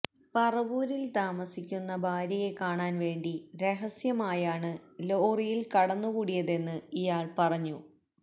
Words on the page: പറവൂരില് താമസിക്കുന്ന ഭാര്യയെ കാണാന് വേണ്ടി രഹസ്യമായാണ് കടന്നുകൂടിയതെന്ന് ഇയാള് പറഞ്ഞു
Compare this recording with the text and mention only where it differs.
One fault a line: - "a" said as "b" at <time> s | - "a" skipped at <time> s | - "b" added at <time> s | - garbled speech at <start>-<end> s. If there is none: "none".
- "ലോറിയില്" added at 5.0 s